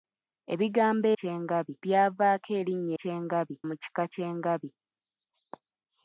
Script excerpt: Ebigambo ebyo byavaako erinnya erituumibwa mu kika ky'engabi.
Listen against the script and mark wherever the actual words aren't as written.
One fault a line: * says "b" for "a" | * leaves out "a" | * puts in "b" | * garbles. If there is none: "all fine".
* says "ky'engabi" for "ebyo"
* says "ky'engabi" for "erituumibwa"